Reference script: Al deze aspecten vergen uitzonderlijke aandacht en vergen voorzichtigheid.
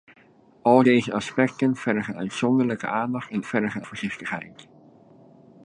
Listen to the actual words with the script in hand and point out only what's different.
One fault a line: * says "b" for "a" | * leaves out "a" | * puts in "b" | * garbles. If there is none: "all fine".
all fine